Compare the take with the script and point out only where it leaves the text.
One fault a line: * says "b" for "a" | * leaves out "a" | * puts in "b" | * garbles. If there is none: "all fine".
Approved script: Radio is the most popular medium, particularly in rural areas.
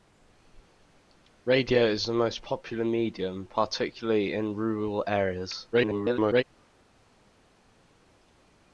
* garbles